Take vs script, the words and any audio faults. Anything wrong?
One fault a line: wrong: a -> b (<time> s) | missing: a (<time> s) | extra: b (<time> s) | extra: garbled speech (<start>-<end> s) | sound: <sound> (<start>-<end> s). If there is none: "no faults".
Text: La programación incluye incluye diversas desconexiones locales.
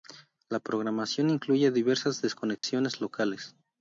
missing: incluye (1.7 s)
sound: dropout (2.6-2.6 s)